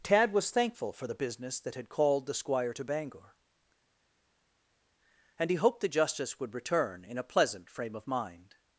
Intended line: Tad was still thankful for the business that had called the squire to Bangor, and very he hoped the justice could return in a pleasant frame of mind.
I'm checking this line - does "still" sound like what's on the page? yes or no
no